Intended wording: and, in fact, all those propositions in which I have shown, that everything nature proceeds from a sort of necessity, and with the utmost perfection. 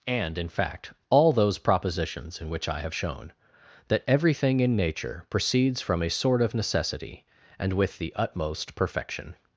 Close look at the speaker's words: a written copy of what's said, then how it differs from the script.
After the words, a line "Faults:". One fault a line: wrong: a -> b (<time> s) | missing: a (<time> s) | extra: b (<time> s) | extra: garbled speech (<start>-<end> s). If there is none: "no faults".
and, in fact, all those propositions in which I have shown, that everything in nature proceeds from a sort of necessity, and with the utmost perfection.
Faults:
extra: in (4.6 s)